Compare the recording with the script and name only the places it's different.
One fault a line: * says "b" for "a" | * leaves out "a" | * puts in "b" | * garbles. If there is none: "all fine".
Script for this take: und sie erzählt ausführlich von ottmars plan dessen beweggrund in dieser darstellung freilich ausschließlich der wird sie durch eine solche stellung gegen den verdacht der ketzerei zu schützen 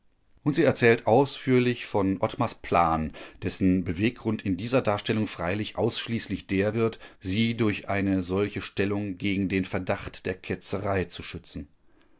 all fine